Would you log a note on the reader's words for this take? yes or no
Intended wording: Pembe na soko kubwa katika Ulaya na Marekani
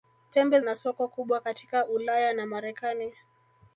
no